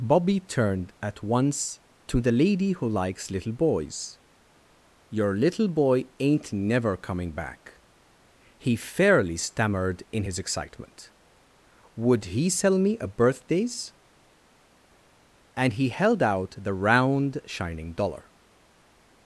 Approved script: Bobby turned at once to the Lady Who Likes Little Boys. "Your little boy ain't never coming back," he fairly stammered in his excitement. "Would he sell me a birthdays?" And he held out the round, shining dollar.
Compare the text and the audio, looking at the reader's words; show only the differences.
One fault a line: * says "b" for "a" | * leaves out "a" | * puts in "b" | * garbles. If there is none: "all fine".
all fine